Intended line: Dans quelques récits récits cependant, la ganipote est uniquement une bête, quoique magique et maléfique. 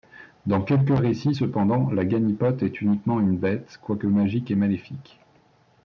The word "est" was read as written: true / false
true